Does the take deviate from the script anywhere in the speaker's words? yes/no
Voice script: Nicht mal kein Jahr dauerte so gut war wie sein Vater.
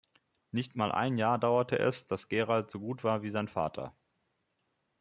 yes